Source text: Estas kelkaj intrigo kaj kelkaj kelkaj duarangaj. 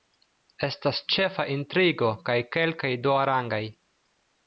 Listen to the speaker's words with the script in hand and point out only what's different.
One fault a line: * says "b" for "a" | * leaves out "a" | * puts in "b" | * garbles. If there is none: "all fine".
* says "ĉefa" for "kelkaj"
* leaves out "kelkaj"